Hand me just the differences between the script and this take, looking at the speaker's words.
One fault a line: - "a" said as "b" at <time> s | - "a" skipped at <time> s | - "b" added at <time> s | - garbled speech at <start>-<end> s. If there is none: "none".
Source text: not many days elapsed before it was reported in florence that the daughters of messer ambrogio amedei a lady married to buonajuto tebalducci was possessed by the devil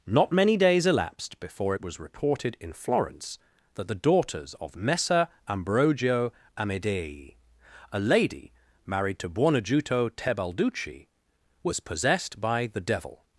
none